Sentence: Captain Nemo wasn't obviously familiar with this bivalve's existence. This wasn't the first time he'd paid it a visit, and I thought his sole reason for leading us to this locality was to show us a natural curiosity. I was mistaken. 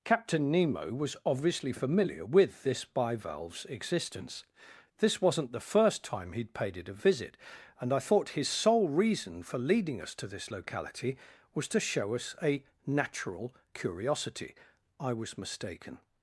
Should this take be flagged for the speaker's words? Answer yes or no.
yes